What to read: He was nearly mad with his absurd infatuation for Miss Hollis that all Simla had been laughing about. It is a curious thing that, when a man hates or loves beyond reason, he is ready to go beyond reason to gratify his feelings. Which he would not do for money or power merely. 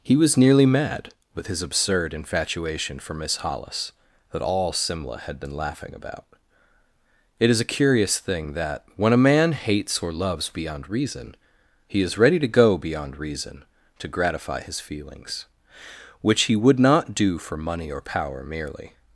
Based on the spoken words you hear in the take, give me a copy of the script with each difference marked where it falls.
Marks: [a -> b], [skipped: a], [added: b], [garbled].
He was nearly mad with his absurd infatuation for Miss Hollis that all Simla had been laughing about. It is a curious thing that, when a man hates or loves beyond reason, he is ready to go beyond reason to gratify his feelings. Which he would not do for money or power merely.